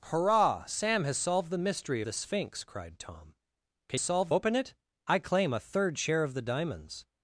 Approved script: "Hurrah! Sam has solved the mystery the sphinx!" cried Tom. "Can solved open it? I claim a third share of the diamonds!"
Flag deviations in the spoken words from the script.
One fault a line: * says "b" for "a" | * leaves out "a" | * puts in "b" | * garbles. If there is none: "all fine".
all fine